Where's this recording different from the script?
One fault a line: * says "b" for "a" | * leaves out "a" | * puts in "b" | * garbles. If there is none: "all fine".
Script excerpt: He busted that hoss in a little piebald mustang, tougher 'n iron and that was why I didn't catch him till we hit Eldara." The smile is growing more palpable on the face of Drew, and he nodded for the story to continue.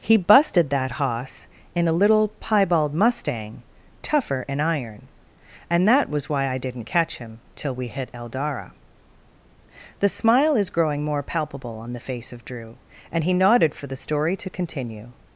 all fine